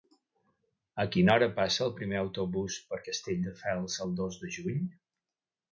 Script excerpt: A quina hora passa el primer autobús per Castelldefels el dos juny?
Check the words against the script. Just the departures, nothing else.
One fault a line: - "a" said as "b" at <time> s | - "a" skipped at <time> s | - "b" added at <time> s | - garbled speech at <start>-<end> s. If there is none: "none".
- "de" added at 4.4 s